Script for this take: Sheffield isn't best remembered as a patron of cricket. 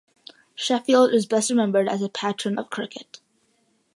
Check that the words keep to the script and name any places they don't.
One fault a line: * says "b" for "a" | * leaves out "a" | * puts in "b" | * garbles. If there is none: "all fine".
* says "is" for "isn't"